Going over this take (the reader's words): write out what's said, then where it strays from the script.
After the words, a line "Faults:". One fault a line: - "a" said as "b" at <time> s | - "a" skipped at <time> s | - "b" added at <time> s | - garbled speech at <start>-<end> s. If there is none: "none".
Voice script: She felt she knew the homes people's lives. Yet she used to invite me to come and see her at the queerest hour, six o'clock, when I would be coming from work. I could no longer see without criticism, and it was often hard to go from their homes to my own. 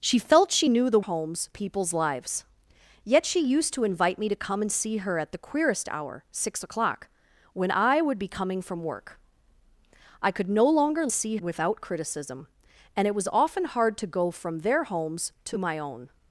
She felt she knew the homes people's lives. Yet she used to invite me to come and see her at the queerest hour, six o'clock, when I would be coming from work. I could no longer see without criticism, and it was often hard to go from their homes to my own.
Faults:
none